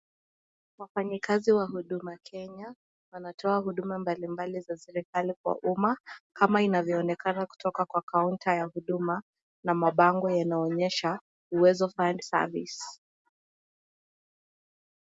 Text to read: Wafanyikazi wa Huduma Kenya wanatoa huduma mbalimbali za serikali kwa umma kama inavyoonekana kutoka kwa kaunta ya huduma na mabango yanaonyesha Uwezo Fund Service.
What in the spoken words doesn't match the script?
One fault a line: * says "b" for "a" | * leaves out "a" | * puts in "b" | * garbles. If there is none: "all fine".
all fine